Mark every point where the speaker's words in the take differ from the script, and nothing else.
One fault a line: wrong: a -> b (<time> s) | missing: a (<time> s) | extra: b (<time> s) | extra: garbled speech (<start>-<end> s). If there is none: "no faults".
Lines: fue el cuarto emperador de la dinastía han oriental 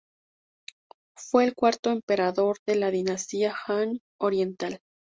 no faults